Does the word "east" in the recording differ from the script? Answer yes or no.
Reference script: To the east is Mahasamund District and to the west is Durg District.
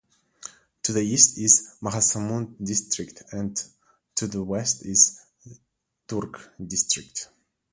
no